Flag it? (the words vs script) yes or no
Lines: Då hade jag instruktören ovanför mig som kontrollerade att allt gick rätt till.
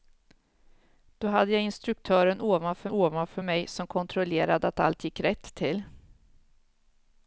yes